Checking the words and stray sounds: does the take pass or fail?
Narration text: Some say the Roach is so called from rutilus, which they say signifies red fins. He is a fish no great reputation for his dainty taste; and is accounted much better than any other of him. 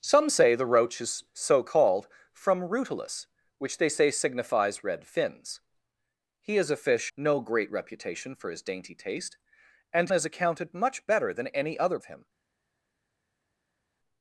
pass